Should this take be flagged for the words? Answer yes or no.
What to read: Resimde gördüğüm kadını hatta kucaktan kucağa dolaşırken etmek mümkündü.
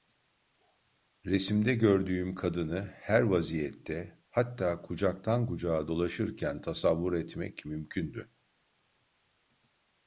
yes